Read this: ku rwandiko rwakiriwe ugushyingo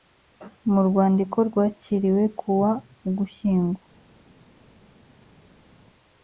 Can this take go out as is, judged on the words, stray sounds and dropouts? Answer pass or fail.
fail